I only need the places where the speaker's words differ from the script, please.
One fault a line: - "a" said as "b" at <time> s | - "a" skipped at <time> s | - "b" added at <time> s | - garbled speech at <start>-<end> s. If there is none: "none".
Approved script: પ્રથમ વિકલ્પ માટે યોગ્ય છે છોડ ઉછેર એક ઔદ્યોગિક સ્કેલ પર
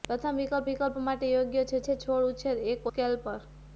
- "વિકલ્પ" added at 0.7 s
- "છે" added at 1.8 s
- "ઔદ્યોગિક" skipped at 2.9 s